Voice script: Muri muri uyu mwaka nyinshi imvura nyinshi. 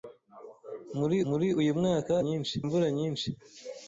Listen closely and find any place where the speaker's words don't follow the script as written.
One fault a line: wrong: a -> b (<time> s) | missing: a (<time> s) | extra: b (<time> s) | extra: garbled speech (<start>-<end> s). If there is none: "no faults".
no faults